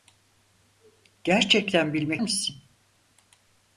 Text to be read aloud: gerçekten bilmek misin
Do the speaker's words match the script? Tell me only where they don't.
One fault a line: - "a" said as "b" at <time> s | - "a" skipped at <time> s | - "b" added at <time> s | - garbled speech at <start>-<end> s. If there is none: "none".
none